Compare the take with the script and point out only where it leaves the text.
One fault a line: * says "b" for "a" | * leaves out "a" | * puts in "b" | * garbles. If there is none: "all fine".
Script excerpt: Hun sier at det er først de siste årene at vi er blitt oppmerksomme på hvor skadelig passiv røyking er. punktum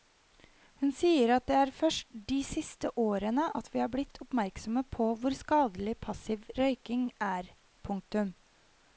all fine